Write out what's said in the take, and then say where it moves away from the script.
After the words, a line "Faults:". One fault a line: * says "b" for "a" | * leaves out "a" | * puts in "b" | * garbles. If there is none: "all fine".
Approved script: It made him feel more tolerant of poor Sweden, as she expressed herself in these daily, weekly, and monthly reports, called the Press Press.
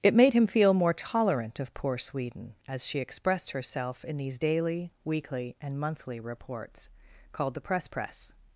It made him feel more tolerant of poor Sweden, as she expressed herself in these daily, weekly, and monthly reports, called the Press Press.
Faults:
all fine